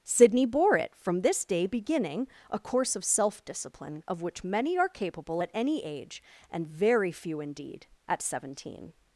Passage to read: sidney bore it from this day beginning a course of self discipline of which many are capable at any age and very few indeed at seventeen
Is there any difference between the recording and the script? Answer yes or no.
no